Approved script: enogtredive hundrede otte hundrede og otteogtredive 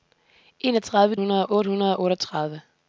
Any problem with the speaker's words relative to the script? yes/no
no